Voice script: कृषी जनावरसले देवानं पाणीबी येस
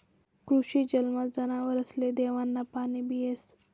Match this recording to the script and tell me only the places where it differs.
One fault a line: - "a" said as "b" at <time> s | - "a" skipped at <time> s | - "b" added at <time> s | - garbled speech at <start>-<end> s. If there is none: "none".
- "जलमा" added at 0.8 s